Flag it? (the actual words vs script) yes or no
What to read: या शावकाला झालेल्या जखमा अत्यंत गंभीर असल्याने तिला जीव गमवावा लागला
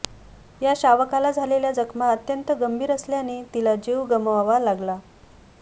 no